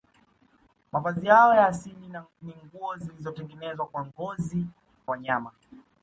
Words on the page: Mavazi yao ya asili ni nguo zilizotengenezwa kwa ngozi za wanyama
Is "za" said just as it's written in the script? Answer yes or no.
no